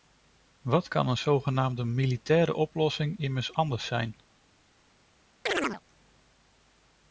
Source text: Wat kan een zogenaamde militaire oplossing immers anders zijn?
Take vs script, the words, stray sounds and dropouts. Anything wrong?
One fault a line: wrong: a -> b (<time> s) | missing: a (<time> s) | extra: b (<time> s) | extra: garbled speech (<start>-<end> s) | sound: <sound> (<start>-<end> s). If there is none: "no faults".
sound: chirp (5.5-5.8 s)